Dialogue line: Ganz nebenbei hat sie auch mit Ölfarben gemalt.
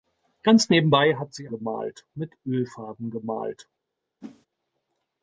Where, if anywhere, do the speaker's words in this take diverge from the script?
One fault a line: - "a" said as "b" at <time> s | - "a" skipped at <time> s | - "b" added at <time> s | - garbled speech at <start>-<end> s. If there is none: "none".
- "auch" said as "gemalt" at 1.5 s